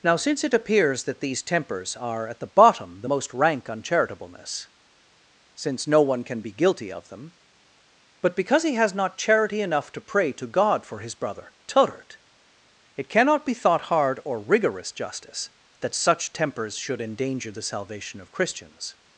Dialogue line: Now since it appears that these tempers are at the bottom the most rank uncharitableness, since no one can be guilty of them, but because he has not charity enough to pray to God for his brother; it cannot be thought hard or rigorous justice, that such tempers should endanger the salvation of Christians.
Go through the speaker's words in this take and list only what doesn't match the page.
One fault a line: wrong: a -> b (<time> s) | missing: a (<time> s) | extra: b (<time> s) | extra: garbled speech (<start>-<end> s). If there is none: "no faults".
extra: turret (11.7 s)